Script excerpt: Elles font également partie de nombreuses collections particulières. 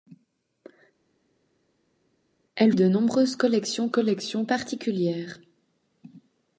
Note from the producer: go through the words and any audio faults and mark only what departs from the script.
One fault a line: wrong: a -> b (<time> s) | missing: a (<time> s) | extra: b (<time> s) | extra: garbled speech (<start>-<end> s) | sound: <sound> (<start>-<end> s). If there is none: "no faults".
missing: font également partie (2.7 s)
extra: collections (3.9 s)